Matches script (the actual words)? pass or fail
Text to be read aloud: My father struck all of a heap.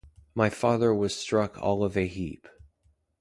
fail